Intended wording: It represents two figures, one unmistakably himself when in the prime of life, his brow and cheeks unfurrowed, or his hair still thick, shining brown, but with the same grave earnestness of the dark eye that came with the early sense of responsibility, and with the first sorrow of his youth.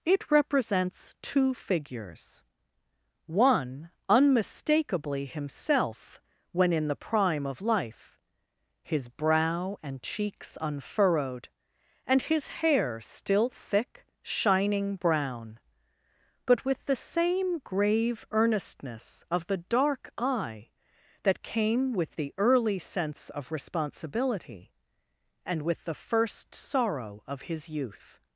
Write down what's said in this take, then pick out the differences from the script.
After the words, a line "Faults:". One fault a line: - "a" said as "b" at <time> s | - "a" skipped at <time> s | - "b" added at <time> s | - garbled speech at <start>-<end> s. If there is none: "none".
It represents two figures, one unmistakably himself when in the prime of life, his brow and cheeks unfurrowed, and his hair still thick, shining brown, but with the same grave earnestness of the dark eye that came with the early sense of responsibility, and with the first sorrow of his youth.
Faults:
- "or" said as "and" at 12.1 s